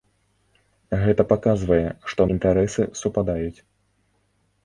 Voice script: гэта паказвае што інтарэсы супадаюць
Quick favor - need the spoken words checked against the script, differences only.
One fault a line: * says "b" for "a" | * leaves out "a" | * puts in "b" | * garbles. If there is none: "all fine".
all fine